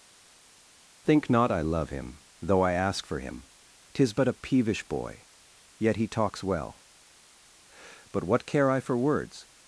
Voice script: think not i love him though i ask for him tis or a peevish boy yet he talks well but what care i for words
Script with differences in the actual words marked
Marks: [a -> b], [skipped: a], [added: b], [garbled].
think not i love him though i ask for him tis [or -> but] a peevish boy yet he talks well but what care i for words